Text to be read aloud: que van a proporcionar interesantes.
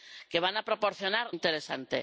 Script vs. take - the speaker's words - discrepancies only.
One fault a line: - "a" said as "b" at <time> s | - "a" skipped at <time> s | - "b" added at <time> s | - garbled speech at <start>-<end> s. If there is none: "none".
none